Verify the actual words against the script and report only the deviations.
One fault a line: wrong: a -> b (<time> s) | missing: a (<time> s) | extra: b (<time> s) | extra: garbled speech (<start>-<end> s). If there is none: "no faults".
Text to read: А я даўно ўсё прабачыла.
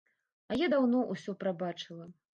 no faults